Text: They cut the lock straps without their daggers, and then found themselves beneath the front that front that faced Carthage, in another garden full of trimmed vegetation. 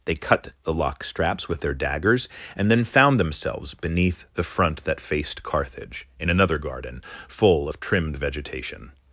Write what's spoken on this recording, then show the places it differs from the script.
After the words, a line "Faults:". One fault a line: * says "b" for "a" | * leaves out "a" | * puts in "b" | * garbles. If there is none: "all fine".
They cut the lock straps with their daggers, and then found themselves beneath the front that faced Carthage, in another garden full of trimmed vegetation.
Faults:
* says "with" for "without"
* leaves out "front that"